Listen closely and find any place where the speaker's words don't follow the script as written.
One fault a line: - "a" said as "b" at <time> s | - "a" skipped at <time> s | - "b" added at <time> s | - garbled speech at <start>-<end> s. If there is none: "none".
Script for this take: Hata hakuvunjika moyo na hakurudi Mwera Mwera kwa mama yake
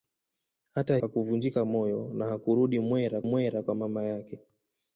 none